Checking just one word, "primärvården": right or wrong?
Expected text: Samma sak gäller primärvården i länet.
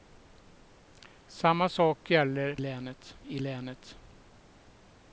wrong